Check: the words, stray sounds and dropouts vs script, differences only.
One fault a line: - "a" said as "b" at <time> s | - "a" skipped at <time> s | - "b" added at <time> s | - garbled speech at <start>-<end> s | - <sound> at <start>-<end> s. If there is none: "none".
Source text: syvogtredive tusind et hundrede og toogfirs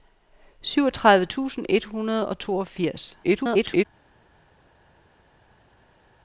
- garbled speech at 3.2-3.8 s